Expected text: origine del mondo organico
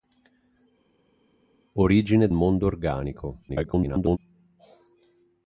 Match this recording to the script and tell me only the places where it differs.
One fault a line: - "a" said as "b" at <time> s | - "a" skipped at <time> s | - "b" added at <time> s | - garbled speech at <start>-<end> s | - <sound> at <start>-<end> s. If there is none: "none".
- "del" skipped at 2.3 s
- garbled speech at 3.5-4.2 s